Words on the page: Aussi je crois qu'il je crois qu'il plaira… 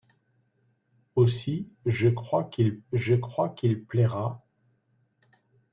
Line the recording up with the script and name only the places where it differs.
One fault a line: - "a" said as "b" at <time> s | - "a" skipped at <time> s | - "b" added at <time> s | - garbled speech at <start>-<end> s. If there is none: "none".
none